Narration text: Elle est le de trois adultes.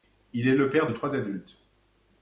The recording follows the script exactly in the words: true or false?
false